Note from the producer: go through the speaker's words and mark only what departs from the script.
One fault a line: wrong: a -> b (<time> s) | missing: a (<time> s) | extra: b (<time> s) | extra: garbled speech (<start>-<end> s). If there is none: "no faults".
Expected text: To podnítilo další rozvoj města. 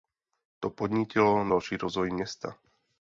no faults